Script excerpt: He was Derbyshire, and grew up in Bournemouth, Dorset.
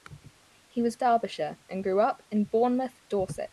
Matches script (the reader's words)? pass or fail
pass